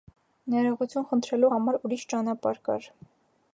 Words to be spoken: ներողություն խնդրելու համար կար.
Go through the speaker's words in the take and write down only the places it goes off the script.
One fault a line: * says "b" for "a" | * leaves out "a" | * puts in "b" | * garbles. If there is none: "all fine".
* puts in "ուրիշ ճանապարհ"